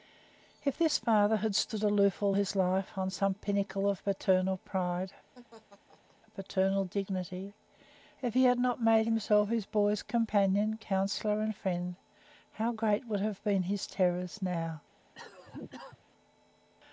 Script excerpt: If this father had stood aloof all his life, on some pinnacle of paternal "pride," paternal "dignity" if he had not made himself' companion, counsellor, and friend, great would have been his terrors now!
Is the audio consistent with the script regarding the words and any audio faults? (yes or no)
no